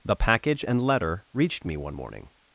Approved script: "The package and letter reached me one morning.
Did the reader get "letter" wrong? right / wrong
right